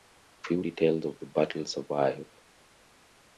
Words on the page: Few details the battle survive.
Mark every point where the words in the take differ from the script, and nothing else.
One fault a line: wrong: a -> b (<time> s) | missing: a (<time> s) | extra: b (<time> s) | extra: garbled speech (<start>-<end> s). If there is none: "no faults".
extra: of (1.0 s)